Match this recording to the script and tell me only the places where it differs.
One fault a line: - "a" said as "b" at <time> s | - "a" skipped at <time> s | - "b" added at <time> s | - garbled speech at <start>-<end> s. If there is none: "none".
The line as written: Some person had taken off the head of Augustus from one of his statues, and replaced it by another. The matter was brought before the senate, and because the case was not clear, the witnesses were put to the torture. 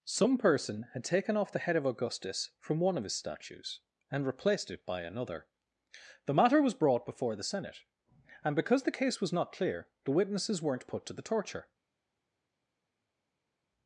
- "were" said as "weren't" at 10.6 s